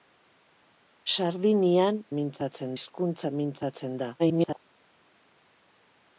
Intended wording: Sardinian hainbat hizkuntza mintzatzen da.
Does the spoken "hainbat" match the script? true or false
false